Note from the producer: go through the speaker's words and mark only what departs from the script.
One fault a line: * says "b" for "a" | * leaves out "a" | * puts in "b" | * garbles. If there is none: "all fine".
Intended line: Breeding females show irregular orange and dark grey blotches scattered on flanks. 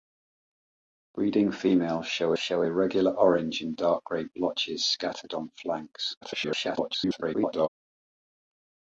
* puts in "show"
* garbles